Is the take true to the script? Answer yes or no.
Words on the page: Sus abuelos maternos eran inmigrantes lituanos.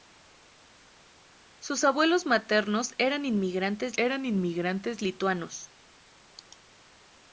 no